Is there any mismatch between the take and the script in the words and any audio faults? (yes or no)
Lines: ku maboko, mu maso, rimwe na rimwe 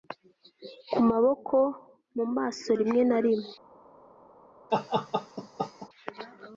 yes